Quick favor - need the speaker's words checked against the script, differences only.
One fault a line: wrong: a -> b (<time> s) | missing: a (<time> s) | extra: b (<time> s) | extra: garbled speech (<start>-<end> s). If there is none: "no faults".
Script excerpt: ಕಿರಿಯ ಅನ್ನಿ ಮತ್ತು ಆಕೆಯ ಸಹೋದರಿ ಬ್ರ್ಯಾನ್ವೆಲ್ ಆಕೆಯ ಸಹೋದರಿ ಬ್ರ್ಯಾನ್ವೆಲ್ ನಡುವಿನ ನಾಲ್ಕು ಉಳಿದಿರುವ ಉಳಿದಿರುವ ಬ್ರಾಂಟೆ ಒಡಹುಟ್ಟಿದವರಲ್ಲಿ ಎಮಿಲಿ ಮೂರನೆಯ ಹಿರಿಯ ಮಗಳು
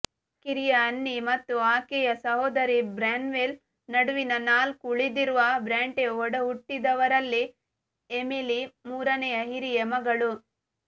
missing: ಆಕೆಯ ಸಹೋದರಿ ಬ್ರ್ಯಾನ್ವೆಲ್ (3.5 s)
missing: ಉಳಿದಿರುವ (5.4 s)